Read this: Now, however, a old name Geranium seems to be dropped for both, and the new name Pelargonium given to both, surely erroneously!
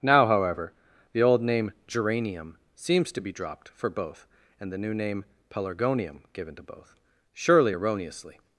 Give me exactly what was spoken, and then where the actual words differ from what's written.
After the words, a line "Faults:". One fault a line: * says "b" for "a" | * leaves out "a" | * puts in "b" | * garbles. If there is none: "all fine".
Now, however, the old name Geranium seems to be dropped for both, and the new name Pelargonium given to both, surely erroneously!
Faults:
* says "the" for "a"